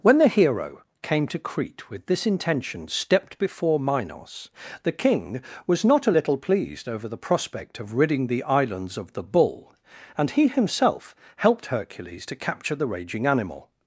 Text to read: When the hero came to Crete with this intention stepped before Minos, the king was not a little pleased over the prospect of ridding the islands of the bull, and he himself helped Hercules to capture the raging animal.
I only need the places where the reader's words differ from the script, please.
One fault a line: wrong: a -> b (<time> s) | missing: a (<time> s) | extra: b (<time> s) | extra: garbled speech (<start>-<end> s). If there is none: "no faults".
no faults